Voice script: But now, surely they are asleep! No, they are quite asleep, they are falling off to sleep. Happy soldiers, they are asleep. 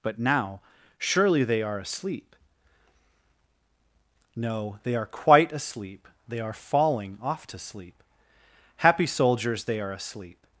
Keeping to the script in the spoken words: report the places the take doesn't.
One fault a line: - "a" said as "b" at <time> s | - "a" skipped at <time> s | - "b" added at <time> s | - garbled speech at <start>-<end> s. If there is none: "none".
none